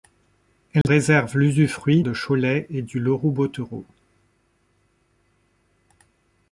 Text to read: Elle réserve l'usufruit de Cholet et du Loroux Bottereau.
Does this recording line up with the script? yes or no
yes